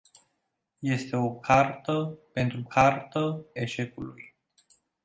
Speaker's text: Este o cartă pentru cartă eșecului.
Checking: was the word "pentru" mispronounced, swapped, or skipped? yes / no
no